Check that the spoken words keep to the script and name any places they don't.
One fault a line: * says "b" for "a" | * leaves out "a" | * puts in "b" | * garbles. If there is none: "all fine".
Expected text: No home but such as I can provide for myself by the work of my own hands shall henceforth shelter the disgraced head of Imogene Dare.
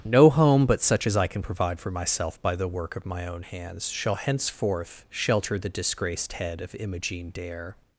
all fine